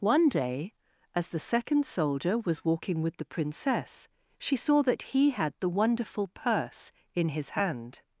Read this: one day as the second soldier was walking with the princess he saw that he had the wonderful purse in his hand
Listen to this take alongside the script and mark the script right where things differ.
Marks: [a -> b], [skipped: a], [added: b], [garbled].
one day as the second soldier was walking with the princess [he -> she] saw that he had the wonderful purse in his hand